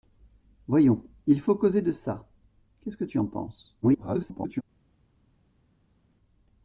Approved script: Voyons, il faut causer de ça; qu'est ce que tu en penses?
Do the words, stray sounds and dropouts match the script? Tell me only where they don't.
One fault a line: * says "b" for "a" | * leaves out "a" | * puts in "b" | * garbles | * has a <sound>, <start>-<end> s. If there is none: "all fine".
* garbles